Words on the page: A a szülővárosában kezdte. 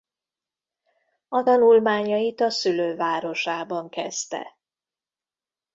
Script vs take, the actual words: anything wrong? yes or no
yes